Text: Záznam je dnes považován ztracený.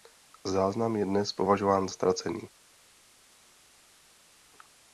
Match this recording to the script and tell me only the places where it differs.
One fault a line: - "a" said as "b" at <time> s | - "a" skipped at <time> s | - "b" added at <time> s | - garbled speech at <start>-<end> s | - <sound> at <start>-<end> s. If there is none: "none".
none